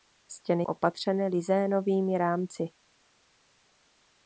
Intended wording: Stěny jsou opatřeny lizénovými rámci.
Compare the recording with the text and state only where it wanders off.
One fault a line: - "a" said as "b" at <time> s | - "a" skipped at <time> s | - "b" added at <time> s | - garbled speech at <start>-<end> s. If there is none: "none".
- "jsou" skipped at 0.6 s